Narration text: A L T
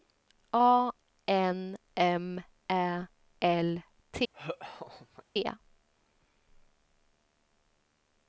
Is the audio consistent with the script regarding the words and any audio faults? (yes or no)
no